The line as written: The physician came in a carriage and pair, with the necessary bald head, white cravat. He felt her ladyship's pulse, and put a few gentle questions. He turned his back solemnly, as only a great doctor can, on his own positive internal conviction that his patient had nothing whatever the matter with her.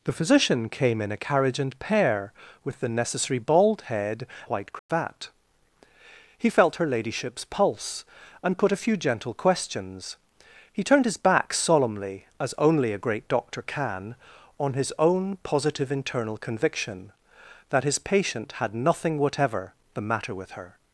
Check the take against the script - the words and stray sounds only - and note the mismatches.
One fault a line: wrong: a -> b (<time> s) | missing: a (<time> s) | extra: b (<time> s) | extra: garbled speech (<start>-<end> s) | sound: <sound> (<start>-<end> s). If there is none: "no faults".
sound: dropout (4.8-4.9 s)